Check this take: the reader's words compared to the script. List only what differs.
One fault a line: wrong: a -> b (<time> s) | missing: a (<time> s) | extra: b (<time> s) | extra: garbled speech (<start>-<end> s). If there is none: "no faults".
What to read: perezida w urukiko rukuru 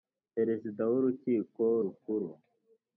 no faults